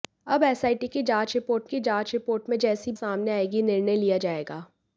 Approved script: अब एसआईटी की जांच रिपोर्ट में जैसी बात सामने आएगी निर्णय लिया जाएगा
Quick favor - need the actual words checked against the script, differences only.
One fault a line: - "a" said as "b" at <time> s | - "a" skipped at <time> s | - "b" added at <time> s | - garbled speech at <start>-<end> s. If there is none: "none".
- "की जांच रिपोर्ट" added at 1.6 s
- "बात" skipped at 2.9 s